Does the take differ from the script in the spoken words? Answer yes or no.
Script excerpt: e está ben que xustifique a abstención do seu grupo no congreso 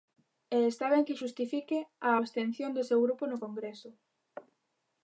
no